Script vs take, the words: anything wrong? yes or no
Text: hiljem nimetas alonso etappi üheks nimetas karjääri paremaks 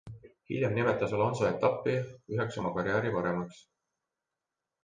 yes